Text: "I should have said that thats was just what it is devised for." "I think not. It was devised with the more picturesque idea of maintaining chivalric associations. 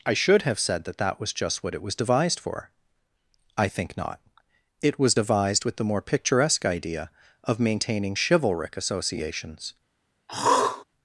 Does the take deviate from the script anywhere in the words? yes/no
yes